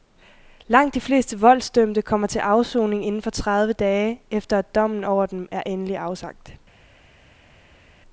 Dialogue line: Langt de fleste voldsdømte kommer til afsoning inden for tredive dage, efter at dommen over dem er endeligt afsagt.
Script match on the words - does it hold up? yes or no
yes